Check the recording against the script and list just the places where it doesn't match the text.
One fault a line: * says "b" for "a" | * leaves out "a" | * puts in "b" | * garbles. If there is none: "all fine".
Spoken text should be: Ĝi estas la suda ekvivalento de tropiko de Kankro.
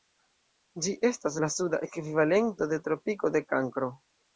all fine